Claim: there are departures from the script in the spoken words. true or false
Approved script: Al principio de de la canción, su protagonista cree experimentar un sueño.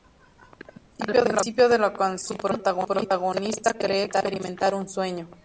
true